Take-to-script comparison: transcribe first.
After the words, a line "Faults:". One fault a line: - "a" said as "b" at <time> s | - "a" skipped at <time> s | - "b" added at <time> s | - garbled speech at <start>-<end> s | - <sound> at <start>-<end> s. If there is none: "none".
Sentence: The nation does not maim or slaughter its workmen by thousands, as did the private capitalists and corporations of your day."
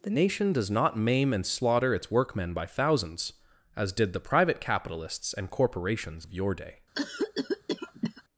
The nation does not maim and slaughter its workmen by thousands, as did the private capitalists and corporations of your day."
Faults:
- "or" said as "and" at 1.3 s
- cough at 6.9-8.2 s